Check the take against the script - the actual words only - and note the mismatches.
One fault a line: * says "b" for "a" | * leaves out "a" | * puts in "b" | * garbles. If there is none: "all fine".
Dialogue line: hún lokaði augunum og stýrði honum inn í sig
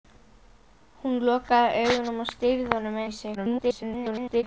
* leaves out "inn"
* garbles